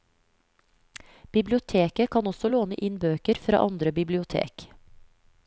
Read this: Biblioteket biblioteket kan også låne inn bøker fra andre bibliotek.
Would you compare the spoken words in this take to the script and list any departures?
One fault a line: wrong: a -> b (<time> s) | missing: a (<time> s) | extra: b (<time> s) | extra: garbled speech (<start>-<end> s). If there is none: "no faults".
missing: biblioteket (2.1 s)